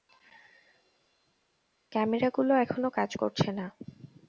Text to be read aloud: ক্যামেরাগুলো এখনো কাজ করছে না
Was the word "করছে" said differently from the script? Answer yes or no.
no